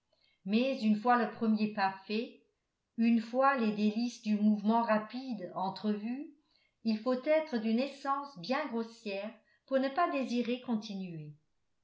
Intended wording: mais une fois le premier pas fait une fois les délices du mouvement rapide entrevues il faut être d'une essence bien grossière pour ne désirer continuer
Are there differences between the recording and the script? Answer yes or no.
yes